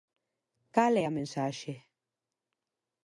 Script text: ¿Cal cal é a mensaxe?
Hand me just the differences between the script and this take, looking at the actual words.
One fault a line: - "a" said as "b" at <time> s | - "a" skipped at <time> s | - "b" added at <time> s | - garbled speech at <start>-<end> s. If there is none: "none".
- "cal" skipped at 0.9 s